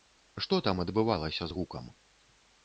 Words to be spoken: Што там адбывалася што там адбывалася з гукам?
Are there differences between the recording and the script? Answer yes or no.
yes